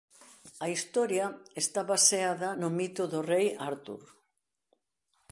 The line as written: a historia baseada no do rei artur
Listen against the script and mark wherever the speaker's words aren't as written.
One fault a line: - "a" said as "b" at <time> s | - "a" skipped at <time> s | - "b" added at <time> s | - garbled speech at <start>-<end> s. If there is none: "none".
- "está" added at 1.6 s
- "mito" added at 2.8 s